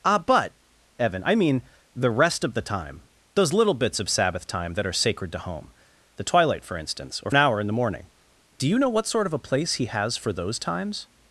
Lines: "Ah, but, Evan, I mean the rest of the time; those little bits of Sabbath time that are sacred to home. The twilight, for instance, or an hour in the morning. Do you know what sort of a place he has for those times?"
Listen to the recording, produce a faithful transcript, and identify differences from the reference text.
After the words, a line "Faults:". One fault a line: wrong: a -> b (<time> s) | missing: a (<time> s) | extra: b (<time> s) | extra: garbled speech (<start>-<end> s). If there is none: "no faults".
"Ah, but, Evan, I mean the rest of the time; those little bits of Sabbath time that are sacred to home. The twilight, for instance, or an hour in the morning. Do you know what sort of a place he has for those times?"
Faults:
no faults